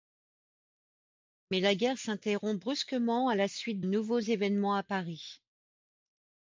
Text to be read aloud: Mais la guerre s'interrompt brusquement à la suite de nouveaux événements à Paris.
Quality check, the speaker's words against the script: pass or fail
fail